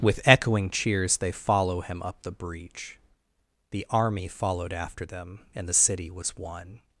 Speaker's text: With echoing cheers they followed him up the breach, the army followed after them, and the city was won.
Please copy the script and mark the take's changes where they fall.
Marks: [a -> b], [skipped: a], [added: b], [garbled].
With echoing cheers they [followed -> follow] him up the breach, the army followed after them, and the city was won.